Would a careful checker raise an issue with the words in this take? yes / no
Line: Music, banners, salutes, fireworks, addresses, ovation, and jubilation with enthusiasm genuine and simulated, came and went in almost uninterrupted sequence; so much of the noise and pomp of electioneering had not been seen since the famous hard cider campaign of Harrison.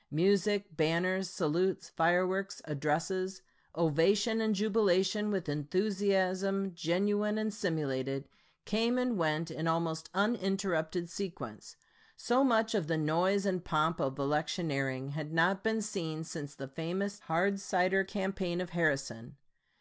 no